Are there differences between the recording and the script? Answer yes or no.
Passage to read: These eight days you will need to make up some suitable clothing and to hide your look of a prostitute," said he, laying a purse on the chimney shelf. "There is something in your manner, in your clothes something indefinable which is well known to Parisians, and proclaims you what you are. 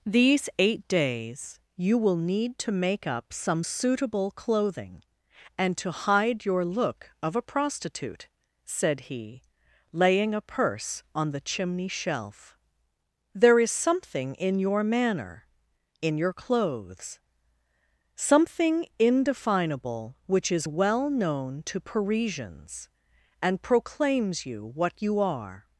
no